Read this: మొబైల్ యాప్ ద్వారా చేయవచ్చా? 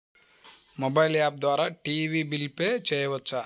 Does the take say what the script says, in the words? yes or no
no